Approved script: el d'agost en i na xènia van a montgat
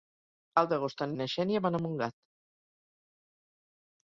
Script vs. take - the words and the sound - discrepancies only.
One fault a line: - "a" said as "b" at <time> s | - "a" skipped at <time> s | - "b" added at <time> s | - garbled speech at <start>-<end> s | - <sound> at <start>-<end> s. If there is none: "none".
none